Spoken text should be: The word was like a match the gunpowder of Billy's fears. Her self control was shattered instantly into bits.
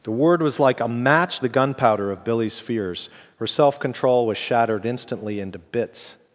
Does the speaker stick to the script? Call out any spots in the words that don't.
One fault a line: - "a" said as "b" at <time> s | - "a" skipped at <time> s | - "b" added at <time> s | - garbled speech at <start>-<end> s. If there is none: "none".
none